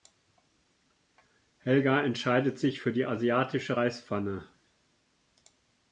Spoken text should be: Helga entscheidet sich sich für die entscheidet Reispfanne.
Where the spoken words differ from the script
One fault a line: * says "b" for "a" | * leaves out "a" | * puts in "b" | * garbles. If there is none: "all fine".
* leaves out "sich"
* says "asiatische" for "entscheidet"